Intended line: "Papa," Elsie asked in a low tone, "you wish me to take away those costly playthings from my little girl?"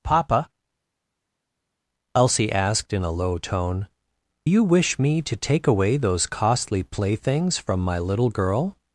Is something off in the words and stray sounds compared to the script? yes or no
no